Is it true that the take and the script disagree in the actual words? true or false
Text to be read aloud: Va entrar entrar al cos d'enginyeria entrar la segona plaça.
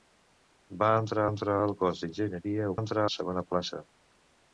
false